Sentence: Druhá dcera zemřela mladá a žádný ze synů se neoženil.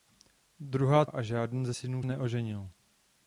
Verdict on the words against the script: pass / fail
fail